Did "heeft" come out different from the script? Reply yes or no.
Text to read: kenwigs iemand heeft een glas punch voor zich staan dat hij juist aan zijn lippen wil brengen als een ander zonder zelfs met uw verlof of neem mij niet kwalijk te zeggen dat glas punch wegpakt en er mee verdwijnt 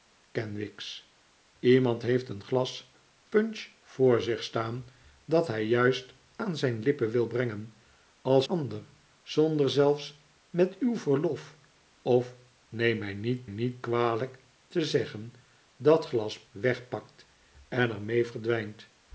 no